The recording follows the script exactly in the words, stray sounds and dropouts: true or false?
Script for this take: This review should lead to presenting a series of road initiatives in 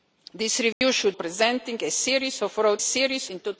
false